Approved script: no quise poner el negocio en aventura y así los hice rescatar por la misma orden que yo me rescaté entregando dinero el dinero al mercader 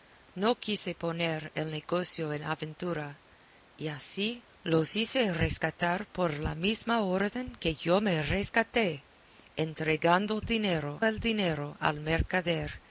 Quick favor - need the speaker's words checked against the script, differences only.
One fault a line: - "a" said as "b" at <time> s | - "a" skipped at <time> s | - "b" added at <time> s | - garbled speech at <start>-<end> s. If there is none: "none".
none